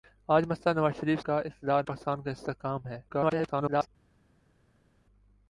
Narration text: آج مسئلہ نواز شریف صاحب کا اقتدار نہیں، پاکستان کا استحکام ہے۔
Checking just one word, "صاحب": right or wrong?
wrong